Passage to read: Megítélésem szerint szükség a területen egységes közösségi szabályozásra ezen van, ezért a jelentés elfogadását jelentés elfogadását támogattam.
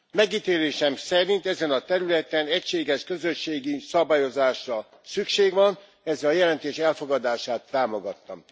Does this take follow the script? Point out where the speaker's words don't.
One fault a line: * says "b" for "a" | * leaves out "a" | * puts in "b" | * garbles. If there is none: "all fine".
* says "ezen" for "szükség"
* says "szükség" for "ezen"
* leaves out "jelentés elfogadását"